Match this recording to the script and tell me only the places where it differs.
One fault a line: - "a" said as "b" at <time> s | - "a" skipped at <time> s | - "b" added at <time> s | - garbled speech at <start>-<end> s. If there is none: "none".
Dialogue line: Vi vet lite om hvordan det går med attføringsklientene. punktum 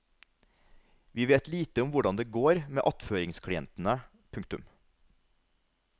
none